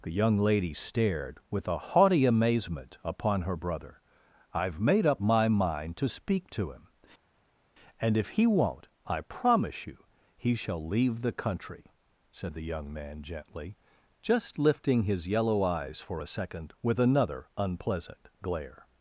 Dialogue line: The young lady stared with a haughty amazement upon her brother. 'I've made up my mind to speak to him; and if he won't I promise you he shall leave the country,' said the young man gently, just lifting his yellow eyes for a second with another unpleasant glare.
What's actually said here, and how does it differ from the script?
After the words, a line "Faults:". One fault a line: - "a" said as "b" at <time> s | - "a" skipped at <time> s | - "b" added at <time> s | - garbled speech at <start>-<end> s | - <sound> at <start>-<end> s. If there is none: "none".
The young lady stared with a haughty amazement upon her brother. 'I've made up my mind to speak to him; and if he won't I promise you he shall leave the country,' said the young man gently, just lifting his yellow eyes for a second with another unpleasant glare.
Faults:
none